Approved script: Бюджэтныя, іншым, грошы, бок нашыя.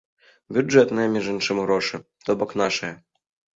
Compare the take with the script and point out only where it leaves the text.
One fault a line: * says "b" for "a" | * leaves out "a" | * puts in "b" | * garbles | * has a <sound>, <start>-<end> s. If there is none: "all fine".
* puts in "між"
* puts in "то"